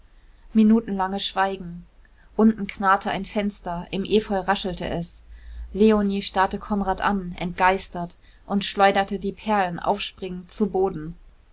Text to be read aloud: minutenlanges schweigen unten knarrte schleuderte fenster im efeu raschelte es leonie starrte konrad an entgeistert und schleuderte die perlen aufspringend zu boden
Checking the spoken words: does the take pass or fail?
fail